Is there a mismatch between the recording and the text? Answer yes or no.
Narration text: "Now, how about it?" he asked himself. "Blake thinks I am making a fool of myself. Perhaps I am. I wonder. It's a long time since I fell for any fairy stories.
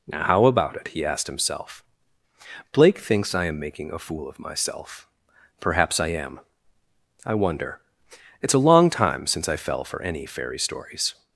no